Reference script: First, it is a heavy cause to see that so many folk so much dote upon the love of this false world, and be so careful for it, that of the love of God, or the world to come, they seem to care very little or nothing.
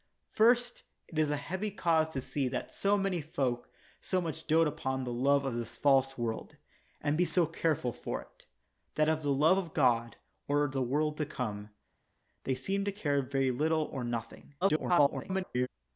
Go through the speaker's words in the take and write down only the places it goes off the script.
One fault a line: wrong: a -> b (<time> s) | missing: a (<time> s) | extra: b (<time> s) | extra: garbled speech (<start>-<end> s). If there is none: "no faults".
extra: garbled speech (14.6-15.7 s)